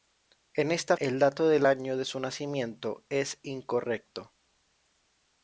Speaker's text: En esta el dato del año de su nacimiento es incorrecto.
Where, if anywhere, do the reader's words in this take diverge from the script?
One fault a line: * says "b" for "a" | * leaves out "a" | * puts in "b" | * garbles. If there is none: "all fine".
all fine